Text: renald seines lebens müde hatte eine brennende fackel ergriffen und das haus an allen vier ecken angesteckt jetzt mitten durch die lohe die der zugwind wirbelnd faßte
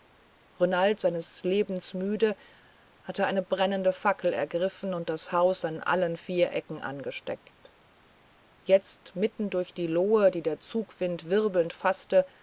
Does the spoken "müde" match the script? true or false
true